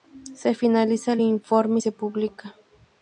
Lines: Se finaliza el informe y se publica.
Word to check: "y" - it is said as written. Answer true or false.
true